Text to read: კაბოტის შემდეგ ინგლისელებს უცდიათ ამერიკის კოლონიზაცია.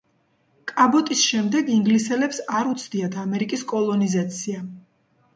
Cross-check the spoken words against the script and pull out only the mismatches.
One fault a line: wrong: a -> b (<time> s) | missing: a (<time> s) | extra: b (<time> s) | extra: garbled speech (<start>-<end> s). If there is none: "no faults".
extra: არ (2.6 s)